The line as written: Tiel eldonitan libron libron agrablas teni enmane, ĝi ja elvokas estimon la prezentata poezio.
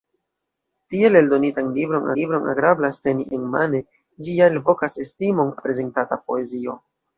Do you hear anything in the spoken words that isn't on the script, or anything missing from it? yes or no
no